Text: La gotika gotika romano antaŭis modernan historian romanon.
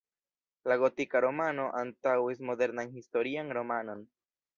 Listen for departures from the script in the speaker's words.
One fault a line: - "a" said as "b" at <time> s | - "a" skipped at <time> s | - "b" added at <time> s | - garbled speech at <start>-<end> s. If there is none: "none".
- "gotika" skipped at 1.2 s